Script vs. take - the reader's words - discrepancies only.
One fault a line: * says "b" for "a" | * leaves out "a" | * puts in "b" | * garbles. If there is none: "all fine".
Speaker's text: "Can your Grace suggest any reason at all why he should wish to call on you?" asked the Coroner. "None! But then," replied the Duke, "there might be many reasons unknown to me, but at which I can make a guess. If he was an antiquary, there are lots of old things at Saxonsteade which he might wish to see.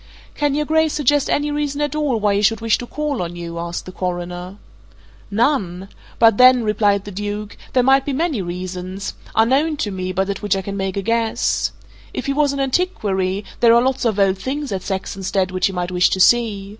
all fine